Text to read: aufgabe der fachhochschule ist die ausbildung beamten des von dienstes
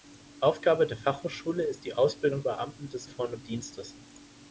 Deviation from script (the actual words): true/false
false